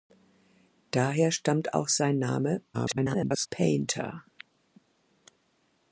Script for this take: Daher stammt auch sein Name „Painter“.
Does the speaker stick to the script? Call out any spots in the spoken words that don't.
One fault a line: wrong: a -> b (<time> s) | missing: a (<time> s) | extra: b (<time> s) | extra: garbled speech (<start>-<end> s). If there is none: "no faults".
extra: garbled speech (2.7-3.5 s)